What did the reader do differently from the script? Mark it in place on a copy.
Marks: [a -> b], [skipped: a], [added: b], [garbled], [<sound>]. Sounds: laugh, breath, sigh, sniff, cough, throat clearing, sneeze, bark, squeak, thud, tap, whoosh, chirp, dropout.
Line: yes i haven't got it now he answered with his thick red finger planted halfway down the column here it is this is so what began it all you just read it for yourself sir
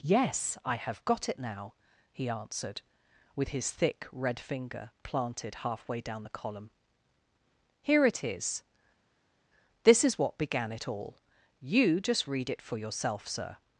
yes i [haven't -> have] got it now he answered with his thick red finger planted halfway down the column here it is this is [skipped: so] what began it all you just read it for yourself sir